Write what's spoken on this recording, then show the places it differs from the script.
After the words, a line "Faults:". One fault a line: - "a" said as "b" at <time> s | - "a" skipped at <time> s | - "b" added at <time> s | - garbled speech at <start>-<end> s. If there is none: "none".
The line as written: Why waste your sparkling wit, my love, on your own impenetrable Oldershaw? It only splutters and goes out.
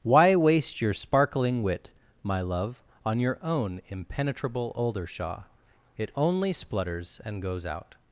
Why waste your sparkling wit, my love, on your own impenetrable Oldershaw? It only splutters and goes out.
Faults:
none